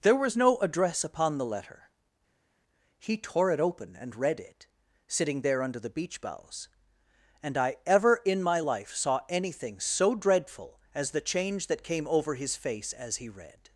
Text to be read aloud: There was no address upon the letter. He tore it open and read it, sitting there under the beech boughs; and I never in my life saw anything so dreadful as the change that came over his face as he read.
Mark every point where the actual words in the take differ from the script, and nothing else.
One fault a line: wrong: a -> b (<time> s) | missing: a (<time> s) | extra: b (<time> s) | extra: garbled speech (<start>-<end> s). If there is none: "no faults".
wrong: never -> ever (7.8 s)